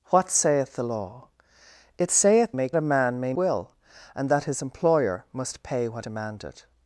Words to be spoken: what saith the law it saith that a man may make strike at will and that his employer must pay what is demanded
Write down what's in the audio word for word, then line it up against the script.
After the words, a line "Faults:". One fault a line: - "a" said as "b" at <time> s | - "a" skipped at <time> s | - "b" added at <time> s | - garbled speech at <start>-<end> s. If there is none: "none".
what saith the law it saith make a man may will and that his employer must pay what demanded
Faults:
- "that" said as "make" at 2.5 s
- "make strike at" skipped at 3.3 s
- "is" skipped at 6.1 s